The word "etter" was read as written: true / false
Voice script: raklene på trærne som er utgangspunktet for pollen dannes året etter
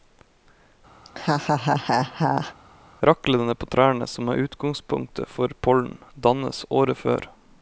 false